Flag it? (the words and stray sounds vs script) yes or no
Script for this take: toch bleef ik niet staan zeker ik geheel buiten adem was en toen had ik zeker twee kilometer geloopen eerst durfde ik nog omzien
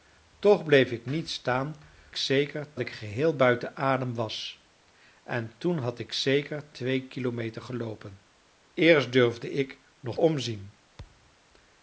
yes